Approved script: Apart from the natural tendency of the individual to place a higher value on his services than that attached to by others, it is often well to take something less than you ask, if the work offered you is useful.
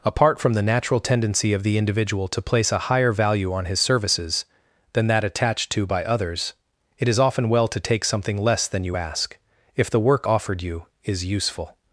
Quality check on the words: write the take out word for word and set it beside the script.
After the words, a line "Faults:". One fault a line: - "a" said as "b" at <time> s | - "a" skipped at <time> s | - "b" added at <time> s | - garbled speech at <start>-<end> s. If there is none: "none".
Apart from the natural tendency of the individual to place a higher value on his services than that attached to by others, it is often well to take something less than you ask, if the work offered you is useful.
Faults:
none